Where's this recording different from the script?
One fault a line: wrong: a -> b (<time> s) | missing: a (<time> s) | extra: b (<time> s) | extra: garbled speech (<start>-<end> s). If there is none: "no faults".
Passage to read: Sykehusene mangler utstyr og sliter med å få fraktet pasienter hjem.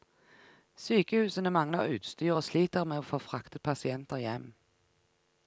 no faults